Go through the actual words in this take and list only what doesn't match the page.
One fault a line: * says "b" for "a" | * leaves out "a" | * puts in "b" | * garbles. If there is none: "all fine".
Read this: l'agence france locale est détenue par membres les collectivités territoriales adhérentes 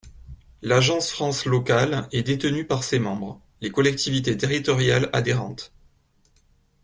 * puts in "ses"